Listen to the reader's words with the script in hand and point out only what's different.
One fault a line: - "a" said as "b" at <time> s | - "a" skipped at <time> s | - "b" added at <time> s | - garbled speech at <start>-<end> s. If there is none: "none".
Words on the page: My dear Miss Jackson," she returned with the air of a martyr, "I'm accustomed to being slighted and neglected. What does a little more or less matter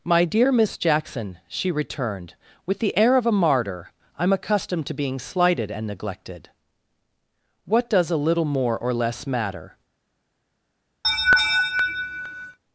none